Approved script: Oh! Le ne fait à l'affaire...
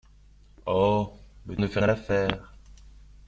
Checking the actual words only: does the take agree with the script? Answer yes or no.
yes